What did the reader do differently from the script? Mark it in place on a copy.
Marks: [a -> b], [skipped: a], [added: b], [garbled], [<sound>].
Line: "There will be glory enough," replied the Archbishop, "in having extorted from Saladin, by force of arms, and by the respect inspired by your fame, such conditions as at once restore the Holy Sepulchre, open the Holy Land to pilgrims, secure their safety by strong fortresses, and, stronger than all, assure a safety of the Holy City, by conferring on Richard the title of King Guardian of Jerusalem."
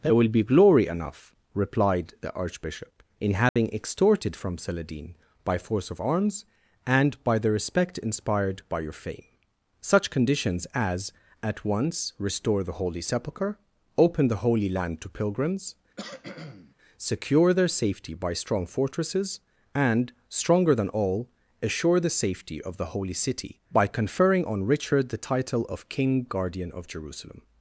"There will be glory enough," replied the Archbishop, "in having [dropout] extorted from Saladin, by force of arms, and by the respect inspired by your fame, such conditions as at once restore the Holy Sepulchre, open the Holy Land to pilgrims, [cough] secure their safety by strong fortresses, and, stronger than all, assure [a -> the] safety of the Holy City, by conferring on Richard the title of King Guardian of Jerusalem."